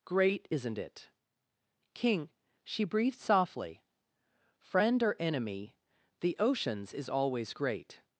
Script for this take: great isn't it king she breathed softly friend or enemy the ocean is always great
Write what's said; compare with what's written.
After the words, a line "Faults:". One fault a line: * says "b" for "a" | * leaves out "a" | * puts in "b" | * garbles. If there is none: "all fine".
great isn't it king she breathed softly friend or enemy the oceans is always great
Faults:
* says "oceans" for "ocean"